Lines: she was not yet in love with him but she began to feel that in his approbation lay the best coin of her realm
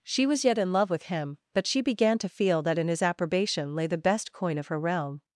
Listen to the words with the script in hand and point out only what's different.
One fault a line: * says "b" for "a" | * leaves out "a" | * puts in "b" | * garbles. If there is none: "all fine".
* leaves out "not"